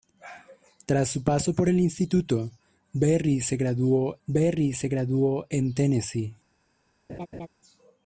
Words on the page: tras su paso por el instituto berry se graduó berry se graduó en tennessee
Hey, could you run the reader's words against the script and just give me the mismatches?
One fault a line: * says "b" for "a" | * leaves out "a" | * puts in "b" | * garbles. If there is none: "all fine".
all fine